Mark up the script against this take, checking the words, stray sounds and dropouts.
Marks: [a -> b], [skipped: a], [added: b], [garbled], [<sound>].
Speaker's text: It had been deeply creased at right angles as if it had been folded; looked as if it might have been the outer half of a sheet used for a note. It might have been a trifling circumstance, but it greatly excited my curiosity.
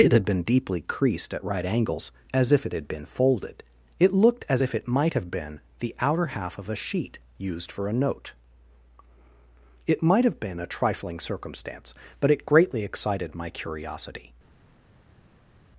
It had been deeply creased at right angles as if it had been folded; [added: it] looked as if it might have been the outer half of a sheet used for a note. It might have been a trifling circumstance, but it greatly excited my curiosity.